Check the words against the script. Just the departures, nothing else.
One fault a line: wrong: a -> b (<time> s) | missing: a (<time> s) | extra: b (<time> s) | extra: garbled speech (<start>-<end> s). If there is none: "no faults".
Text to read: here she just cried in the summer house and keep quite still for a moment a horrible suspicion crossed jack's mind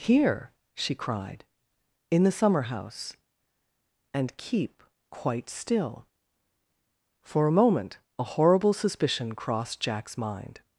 missing: just (0.9 s)